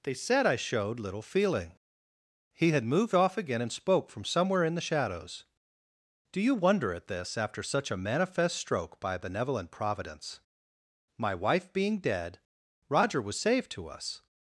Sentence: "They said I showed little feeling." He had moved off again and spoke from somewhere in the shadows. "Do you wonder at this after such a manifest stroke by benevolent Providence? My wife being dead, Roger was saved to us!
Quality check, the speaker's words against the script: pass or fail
pass